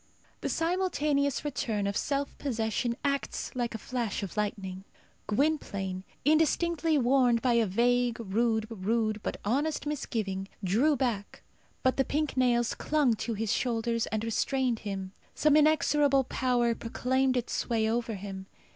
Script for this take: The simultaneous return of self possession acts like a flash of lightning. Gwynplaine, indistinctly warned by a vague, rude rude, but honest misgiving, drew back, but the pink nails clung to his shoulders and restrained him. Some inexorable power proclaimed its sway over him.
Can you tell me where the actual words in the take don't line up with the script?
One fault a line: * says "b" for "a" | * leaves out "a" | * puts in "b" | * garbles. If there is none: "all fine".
all fine